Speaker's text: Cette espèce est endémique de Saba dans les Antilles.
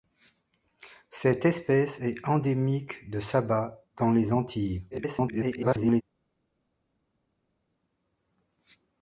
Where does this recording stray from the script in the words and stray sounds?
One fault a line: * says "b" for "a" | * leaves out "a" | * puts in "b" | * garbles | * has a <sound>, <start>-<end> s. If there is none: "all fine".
* garbles